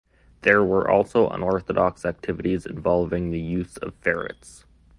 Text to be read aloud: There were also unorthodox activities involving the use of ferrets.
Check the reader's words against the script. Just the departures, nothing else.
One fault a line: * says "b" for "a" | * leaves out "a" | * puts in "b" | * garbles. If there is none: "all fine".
all fine